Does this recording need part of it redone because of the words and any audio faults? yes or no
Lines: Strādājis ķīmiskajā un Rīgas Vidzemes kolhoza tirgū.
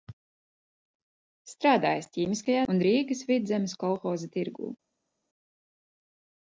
no